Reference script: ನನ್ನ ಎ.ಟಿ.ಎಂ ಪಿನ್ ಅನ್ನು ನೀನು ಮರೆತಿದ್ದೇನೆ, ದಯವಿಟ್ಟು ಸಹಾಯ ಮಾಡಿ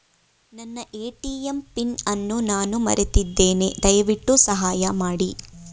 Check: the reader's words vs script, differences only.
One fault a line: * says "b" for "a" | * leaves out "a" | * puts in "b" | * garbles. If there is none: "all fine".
* says "ನಾನು" for "ನೀನು"